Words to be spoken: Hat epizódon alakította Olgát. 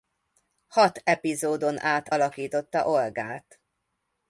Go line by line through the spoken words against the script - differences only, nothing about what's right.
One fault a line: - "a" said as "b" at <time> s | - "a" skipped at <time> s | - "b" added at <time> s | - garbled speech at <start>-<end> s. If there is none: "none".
- "át" added at 1.8 s